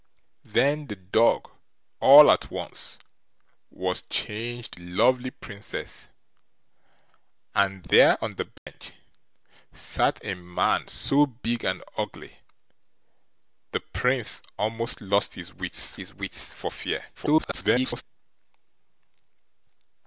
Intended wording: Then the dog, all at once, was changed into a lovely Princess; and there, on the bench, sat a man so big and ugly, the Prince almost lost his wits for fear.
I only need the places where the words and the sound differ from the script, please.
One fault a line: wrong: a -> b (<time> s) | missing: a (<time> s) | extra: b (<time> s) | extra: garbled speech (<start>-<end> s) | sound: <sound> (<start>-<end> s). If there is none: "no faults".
missing: into a (4.8 s)
sound: dropout (8.6-8.7 s)
extra: his wits (16.0 s)
extra: garbled speech (17.1-18.0 s)